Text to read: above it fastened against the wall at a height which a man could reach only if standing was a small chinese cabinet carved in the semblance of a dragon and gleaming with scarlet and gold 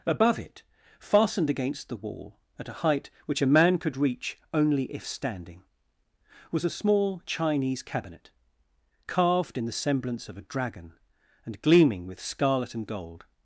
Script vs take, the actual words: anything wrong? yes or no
no